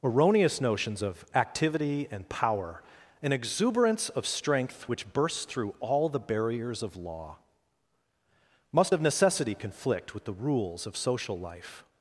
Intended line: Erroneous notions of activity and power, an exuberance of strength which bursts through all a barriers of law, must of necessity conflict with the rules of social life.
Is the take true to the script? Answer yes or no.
no